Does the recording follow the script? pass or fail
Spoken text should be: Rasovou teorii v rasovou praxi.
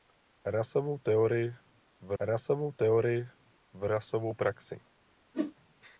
fail